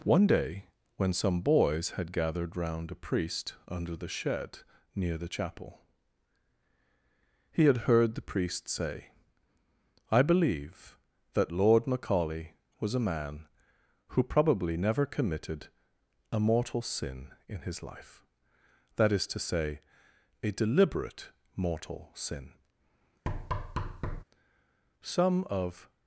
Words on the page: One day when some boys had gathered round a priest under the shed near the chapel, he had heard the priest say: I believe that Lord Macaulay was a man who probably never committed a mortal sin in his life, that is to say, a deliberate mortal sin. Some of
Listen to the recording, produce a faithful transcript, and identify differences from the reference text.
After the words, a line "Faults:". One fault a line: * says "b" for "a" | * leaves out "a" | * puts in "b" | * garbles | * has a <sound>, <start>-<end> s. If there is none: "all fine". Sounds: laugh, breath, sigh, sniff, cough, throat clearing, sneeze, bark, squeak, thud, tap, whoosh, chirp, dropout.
One day when some boys had gathered round a priest under the shed near the chapel, he had heard the priest say: I believe that Lord Macaulay was a man who probably never committed a mortal sin in his life, that is to say, a deliberate mortal sin. Some of
Faults:
* has a thud, 23.3-24.2 s